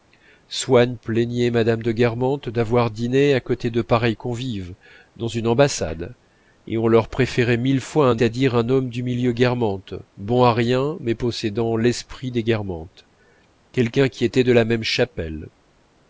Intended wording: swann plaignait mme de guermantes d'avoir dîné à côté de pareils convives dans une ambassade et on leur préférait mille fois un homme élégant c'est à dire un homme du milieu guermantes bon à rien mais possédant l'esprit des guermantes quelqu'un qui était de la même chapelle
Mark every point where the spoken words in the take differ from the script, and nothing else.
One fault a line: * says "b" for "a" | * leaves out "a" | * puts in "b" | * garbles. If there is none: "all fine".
* leaves out "homme élégant c'est"